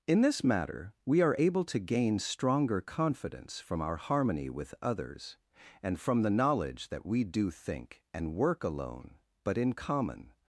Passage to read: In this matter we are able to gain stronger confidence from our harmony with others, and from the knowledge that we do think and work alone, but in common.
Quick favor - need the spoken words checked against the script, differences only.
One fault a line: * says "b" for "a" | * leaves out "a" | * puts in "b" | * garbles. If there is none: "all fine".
all fine